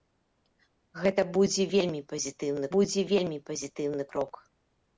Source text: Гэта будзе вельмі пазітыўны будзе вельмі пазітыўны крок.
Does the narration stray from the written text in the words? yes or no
no